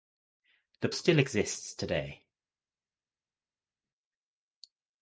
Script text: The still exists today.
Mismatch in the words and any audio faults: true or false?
false